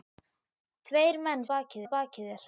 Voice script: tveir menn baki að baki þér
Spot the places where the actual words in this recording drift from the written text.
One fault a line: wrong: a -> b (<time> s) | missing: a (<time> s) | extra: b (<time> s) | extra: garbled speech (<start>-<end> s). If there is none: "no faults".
no faults